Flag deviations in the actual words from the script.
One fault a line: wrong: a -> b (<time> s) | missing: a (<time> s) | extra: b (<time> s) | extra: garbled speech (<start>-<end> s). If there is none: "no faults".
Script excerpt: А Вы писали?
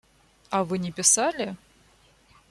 extra: не (0.8 s)